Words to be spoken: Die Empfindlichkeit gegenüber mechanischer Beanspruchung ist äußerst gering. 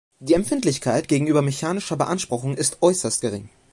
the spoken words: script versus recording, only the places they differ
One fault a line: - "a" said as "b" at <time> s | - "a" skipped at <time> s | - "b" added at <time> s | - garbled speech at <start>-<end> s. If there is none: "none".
none